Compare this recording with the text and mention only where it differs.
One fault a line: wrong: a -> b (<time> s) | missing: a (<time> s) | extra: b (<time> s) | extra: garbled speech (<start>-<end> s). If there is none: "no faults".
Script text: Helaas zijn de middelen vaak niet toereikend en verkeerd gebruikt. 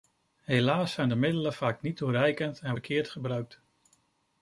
no faults